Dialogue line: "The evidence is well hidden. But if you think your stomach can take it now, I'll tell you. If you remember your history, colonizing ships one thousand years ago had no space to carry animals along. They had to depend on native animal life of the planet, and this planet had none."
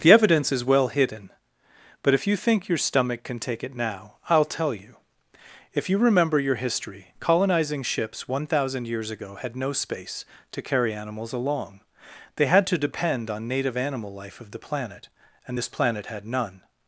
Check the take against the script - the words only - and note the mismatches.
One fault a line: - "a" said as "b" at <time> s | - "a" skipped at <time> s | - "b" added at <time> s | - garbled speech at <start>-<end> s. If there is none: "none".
none